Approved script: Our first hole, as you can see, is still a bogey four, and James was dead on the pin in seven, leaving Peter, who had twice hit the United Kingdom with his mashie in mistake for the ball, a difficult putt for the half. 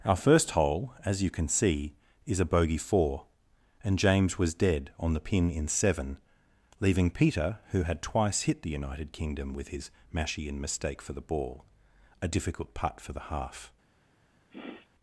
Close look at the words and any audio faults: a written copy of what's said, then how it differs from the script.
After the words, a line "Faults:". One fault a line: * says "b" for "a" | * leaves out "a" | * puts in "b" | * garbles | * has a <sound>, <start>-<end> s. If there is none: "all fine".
Our first hole, as you can see, is a bogey four, and James was dead on the pin in seven, leaving Peter, who had twice hit the United Kingdom with his mashie in mistake for the ball, a difficult putt for the half.
Faults:
* leaves out "still"
* has a sniff, 14.5-14.9 s